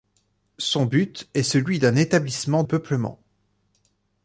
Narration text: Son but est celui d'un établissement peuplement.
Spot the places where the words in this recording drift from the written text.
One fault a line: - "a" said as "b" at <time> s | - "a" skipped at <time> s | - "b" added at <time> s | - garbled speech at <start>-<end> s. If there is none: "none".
none